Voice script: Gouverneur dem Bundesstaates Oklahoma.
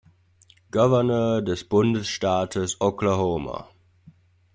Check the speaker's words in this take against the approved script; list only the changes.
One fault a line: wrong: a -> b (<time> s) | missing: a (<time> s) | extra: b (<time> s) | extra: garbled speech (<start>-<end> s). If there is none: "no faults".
wrong: dem -> des (1.4 s)